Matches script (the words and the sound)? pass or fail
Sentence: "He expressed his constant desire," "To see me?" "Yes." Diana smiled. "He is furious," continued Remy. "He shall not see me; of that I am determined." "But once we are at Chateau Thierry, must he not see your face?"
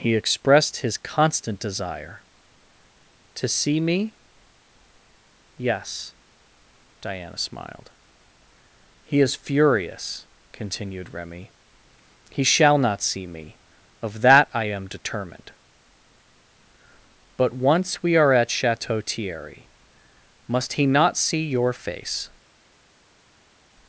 pass